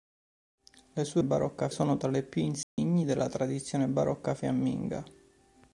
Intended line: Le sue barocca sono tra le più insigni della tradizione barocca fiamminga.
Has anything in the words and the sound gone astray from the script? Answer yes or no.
yes